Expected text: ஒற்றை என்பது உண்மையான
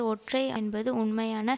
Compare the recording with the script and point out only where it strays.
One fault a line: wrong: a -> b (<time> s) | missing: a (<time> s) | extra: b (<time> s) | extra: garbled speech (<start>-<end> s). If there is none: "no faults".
no faults